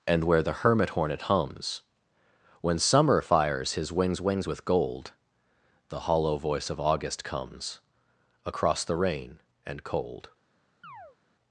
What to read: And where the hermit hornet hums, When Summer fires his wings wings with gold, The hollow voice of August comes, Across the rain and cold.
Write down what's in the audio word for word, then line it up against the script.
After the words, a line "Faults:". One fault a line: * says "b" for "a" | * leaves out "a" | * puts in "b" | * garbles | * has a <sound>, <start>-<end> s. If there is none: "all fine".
And where the hermit hornet hums, When Summer fires his wings wings with gold, The hollow voice of August comes, Across the rain and cold.
Faults:
* has a chirp, 10.8-11.2 s